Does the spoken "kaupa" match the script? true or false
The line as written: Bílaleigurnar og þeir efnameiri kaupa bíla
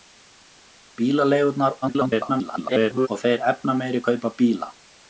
true